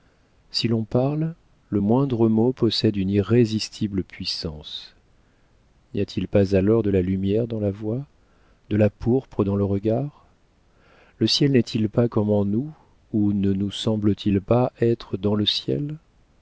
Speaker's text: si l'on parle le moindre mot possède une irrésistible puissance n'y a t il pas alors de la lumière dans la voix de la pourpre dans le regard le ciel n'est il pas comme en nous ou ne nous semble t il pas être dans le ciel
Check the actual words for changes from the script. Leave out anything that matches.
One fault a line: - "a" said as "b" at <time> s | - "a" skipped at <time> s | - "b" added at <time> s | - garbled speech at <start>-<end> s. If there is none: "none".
none